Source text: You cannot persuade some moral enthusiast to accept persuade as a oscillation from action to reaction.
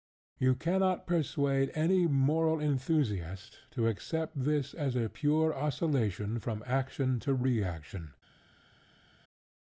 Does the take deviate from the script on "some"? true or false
true